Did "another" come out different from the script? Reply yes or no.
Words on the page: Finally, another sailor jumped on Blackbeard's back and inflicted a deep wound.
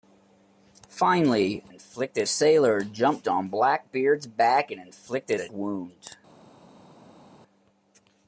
yes